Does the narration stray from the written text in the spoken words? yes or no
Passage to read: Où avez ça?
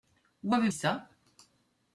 no